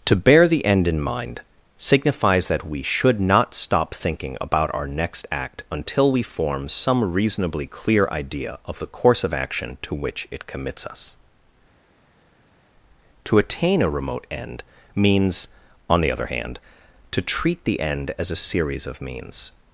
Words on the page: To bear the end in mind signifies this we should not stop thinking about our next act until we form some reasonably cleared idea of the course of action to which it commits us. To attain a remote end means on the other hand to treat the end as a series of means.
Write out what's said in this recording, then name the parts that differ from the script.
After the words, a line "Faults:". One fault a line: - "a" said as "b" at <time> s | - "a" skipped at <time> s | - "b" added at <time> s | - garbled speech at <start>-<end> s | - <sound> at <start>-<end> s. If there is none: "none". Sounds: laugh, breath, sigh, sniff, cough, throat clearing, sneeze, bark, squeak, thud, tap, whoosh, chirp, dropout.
To bear the end in mind signifies that we should not stop thinking about our next act until we form some reasonably clear idea of the course of action to which it commits us. To attain a remote end means on the other hand to treat the end as a series of means.
Faults:
- "this" said as "that" at 2.5 s
- "cleared" said as "clear" at 7.7 s